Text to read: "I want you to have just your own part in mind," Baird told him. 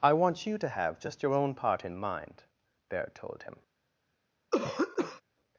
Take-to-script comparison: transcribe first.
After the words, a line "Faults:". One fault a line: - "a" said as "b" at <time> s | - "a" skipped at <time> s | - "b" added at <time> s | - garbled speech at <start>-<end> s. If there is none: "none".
"I want you to have just your own part in mind," Baird told him.
Faults:
none